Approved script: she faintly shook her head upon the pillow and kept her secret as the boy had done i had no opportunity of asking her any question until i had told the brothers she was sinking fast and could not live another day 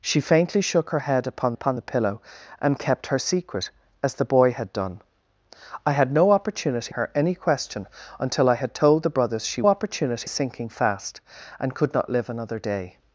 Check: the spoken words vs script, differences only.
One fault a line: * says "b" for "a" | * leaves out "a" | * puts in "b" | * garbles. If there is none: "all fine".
* puts in "upon"
* leaves out "of asking"
* says "opportunity" for "was"